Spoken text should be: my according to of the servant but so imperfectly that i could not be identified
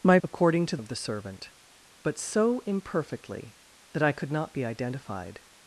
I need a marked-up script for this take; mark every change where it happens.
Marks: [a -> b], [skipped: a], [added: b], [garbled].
my according to of the servant but so imperfectly that i could not be identified